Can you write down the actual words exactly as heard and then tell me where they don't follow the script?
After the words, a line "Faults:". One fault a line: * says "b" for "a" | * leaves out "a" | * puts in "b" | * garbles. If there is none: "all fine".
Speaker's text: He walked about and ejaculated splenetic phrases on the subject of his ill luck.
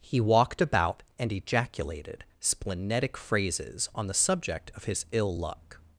He walked about and ejaculated splenetic phrases on the subject of his ill luck.
Faults:
all fine